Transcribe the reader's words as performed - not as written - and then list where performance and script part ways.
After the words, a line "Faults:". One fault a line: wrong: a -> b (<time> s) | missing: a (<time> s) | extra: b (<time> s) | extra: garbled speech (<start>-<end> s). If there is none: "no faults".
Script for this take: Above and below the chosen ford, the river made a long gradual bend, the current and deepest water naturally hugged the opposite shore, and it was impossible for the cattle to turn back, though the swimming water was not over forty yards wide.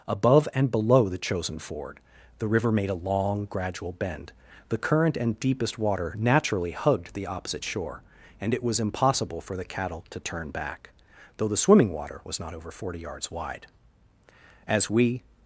Above and below the chosen ford, the river made a long gradual bend, the current and deepest water naturally hugged the opposite shore, and it was impossible for the cattle to turn back, though the swimming water was not over forty yards wide. As we
Faults:
extra: As we (14.7 s)